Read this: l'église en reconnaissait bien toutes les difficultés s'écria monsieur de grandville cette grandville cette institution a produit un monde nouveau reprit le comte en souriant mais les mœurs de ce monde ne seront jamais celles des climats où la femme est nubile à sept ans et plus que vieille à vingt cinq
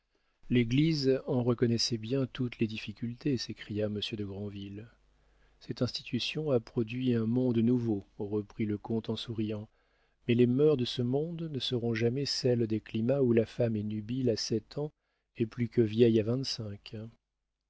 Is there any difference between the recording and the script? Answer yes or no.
yes